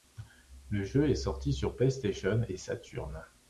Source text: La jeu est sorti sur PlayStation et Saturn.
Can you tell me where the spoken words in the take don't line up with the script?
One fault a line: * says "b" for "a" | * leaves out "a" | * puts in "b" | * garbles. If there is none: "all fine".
* says "Le" for "La"